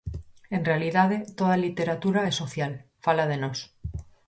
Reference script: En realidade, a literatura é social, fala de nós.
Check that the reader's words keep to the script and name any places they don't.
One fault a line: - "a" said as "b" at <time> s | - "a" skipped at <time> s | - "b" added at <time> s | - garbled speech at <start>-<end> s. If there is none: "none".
- "toda" added at 1.4 s